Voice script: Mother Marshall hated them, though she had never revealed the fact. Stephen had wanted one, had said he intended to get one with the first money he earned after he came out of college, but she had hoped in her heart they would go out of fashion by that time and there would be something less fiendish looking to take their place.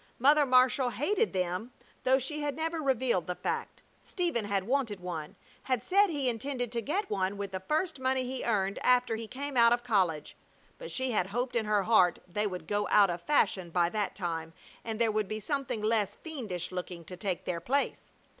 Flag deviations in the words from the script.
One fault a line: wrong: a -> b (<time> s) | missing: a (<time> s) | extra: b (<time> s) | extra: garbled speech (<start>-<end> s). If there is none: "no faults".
no faults